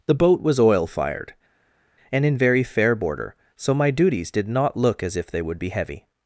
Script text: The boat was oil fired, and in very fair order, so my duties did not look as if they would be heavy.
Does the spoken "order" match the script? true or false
false